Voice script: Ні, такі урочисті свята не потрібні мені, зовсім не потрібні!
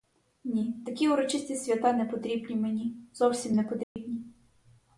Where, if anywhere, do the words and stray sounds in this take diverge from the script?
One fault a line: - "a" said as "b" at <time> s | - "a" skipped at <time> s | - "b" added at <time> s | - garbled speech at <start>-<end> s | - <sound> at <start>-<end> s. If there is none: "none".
- dropout at 3.8-4.0 s